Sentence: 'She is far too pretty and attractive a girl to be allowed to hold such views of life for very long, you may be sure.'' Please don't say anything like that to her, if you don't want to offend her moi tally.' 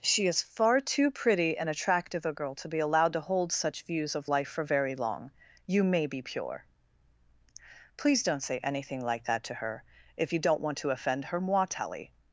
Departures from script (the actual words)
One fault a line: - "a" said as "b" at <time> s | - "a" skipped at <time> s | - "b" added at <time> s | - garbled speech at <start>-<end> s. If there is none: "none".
- "sure" said as "pure" at 6.2 s